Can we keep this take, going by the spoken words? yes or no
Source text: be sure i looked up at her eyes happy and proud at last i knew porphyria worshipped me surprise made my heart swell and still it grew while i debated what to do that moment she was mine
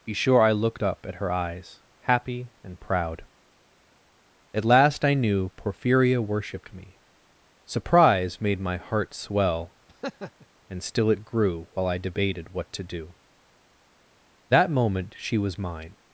yes